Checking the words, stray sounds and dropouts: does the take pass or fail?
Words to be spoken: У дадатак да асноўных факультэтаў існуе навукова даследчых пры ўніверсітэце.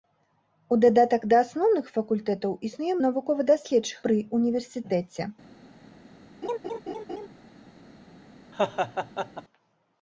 fail